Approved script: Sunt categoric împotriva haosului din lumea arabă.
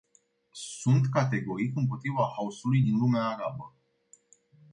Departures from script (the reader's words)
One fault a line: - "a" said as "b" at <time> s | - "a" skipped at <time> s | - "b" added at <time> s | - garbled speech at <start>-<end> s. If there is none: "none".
none